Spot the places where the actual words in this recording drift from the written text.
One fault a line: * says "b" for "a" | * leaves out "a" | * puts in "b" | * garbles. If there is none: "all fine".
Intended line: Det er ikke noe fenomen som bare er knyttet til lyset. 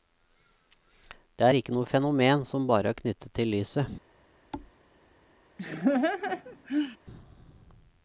all fine